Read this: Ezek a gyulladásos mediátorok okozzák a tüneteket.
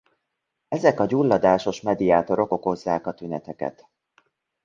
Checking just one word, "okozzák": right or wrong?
right